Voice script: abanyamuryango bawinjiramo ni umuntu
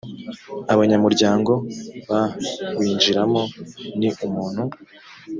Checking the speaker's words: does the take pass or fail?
pass